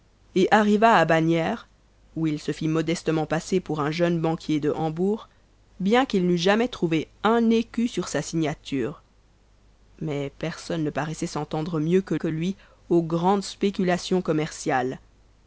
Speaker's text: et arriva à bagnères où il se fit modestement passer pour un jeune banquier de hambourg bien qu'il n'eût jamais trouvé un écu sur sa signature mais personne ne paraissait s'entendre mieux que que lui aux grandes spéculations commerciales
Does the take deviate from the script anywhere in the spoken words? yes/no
no